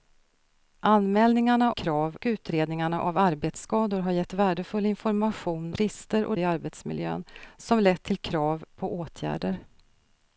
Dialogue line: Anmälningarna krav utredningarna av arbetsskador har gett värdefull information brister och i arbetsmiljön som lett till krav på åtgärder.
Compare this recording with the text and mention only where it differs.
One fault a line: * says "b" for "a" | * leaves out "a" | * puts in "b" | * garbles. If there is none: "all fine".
all fine